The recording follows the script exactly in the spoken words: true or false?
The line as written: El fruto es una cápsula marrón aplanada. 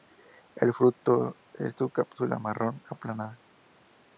true